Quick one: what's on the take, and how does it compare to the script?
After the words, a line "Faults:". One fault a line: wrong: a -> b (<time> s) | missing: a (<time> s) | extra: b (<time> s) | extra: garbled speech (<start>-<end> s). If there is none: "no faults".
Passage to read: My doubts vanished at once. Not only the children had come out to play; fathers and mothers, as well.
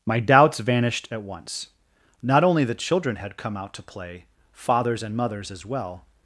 My doubts vanished at once. Not only the children had come out to play; fathers and mothers, as well.
Faults:
no faults